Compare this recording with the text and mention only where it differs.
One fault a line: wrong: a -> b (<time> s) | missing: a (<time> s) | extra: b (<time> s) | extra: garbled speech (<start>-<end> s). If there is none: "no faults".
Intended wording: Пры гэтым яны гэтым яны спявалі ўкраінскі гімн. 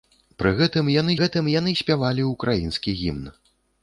no faults